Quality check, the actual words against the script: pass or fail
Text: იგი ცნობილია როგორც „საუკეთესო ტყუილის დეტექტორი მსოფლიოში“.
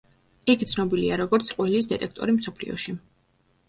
fail